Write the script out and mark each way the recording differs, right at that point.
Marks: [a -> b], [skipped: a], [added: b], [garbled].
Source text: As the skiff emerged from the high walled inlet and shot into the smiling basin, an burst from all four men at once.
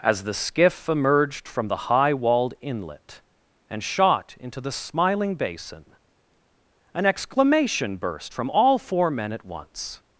As the skiff emerged from the high walled inlet and shot into the smiling basin, an [added: exclamation] burst from all four men at once.